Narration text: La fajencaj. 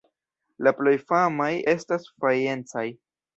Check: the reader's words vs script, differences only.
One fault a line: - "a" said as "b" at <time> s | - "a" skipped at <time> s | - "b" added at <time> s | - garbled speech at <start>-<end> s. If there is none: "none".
- "plej famaj estas" added at 0.8 s